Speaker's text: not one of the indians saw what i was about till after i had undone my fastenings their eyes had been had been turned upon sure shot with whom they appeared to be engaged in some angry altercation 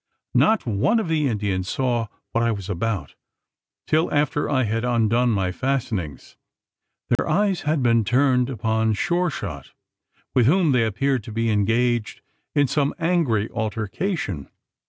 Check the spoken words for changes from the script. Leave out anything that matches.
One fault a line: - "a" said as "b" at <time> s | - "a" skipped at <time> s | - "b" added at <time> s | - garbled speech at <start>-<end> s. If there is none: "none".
- "had been" skipped at 8.0 s